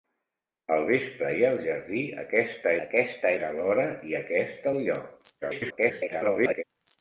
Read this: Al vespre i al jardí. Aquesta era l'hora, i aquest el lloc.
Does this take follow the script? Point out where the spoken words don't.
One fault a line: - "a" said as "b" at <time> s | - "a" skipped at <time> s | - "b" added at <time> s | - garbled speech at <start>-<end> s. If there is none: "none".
- "aquesta" added at 2.8 s
- garbled speech at 5.4-6.6 s